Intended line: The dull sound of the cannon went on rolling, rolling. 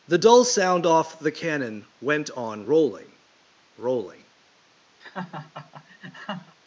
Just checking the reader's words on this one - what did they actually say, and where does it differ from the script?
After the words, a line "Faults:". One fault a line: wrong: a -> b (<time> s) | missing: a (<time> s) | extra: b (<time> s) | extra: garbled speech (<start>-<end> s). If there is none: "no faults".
The dull sound off the cannon went on rolling, rolling.
Faults:
wrong: of -> off (0.9 s)